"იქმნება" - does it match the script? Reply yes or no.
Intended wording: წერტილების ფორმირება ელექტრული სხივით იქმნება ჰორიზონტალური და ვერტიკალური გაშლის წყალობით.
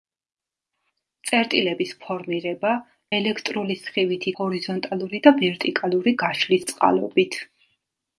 no